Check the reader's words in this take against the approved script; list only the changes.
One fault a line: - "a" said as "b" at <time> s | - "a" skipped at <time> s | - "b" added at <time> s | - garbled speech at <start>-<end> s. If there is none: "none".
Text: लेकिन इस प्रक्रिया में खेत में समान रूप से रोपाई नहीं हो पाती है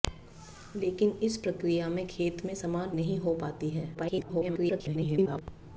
- "रूप से रोपाई" skipped at 3.0 s
- garbled speech at 3.9-5.4 s